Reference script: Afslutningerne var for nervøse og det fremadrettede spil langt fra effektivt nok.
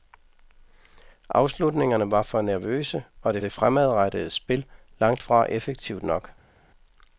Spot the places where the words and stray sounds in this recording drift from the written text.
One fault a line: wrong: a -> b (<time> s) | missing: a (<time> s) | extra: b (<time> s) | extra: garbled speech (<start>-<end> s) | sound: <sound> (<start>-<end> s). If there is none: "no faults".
extra: det (3.4 s)